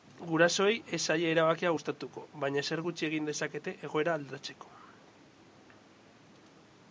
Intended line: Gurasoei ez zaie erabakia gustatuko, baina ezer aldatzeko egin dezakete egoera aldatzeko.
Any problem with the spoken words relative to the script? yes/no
yes